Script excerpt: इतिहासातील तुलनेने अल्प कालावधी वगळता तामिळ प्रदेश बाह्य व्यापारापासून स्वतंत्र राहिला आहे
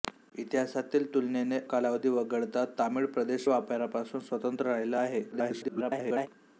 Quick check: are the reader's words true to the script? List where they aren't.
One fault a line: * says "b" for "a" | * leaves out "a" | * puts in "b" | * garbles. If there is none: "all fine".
* leaves out "अल्प"
* leaves out "बाह्य"
* garbles